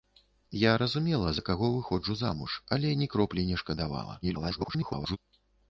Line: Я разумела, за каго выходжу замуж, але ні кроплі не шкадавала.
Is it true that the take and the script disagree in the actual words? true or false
true